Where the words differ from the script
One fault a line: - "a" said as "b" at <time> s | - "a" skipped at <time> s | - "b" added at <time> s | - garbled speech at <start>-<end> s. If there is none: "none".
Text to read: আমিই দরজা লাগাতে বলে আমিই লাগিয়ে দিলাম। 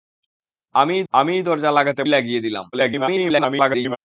- "আমিই" added at 1.1 s
- "বলে আমিই" skipped at 2.0 s
- garbled speech at 2.7-4.0 s